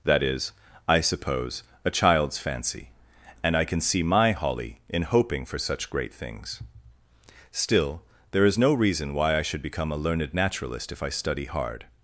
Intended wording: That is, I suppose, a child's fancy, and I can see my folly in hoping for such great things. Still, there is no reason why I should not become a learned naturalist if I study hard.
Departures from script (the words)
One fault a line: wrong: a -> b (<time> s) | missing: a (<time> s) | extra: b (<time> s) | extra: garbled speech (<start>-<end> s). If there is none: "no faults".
wrong: folly -> holly (4.3 s)
missing: not (9.6 s)